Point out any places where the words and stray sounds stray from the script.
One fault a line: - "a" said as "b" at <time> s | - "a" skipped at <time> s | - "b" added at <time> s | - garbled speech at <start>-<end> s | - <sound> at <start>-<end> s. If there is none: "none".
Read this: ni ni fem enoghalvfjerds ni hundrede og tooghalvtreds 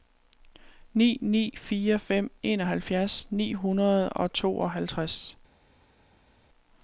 - "fire" added at 1.6 s